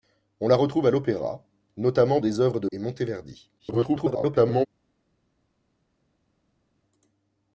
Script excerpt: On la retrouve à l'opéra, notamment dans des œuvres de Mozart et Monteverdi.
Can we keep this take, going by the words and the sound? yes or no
no